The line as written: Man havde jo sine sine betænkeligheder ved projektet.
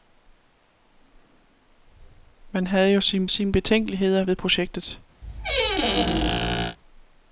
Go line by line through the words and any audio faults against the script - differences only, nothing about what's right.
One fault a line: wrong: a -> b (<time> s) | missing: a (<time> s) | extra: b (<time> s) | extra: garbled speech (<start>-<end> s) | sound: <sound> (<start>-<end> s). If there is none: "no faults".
sound: squeak (5.2-6.8 s)